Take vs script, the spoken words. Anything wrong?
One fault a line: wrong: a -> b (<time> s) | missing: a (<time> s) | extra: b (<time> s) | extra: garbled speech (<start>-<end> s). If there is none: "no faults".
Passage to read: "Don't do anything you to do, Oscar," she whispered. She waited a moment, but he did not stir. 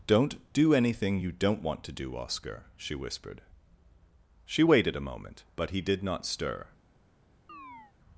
extra: don't want (1.3 s)